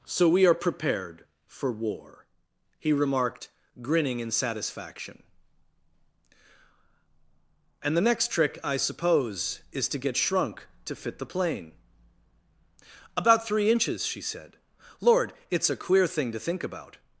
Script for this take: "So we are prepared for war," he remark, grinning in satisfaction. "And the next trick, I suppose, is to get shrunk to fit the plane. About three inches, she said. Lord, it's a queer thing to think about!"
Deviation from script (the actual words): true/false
true